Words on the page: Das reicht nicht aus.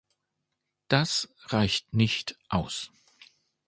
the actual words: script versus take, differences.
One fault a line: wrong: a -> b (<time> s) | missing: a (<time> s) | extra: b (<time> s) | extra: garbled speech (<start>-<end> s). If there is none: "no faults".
no faults